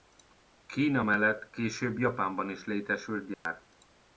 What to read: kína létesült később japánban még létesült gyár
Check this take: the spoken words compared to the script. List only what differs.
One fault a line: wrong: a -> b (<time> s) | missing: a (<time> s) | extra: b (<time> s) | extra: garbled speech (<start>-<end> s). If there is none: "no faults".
wrong: létesült -> mellett (1.0 s)
wrong: még -> is (2.5 s)